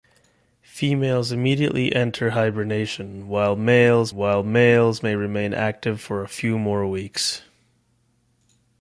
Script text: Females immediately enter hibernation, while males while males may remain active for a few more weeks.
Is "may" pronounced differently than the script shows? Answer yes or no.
no